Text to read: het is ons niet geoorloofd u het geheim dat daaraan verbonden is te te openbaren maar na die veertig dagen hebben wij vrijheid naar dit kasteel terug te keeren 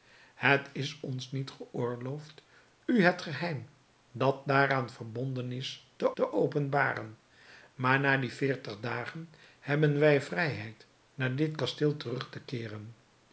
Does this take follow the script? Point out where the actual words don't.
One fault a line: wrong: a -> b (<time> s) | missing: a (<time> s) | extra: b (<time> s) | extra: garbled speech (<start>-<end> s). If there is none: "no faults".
no faults